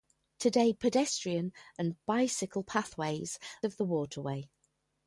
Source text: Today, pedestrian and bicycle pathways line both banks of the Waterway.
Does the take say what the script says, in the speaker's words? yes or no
no